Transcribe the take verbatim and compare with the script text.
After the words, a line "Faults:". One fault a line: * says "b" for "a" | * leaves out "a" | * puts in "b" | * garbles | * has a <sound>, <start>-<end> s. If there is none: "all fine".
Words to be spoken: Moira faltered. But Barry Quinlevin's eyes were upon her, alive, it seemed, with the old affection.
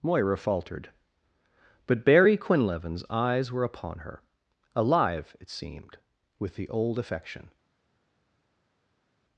Moira faltered. But Barry Quinlevin's eyes were upon her, alive, it seemed, with the old affection.
Faults:
all fine